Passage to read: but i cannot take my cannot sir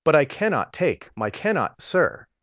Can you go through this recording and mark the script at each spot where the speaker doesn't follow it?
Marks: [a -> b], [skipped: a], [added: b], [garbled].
but i cannot take my cannot sir